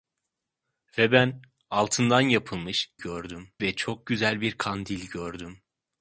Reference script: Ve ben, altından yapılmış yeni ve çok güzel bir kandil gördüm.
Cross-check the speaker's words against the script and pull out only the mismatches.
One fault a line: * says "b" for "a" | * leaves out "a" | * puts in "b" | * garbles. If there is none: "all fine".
* says "gördüm" for "yeni"